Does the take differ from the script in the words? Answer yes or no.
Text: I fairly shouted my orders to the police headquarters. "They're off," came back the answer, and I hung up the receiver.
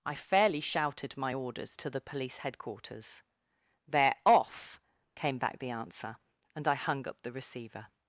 no